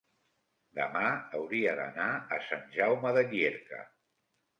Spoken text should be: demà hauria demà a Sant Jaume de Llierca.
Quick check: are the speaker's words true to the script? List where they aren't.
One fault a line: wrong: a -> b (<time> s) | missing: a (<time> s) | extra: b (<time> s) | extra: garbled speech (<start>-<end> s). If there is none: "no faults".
wrong: demà -> d'anar (1.8 s)